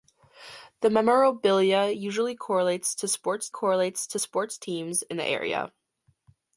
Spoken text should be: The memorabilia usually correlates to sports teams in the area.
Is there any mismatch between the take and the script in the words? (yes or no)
yes